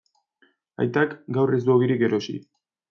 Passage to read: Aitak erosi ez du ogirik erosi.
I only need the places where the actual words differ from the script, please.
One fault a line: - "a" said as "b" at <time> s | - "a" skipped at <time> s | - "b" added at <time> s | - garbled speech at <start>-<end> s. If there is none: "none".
- "erosi" said as "gaur" at 1.4 s